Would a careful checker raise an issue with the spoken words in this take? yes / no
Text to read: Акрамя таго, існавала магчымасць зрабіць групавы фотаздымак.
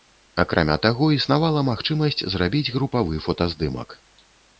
no